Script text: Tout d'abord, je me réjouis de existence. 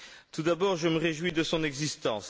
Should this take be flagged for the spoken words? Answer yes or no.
yes